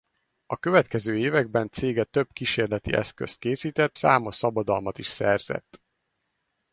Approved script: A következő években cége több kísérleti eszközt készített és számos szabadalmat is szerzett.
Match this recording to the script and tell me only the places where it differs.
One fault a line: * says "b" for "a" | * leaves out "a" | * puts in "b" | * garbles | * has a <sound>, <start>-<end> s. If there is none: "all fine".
* leaves out "és"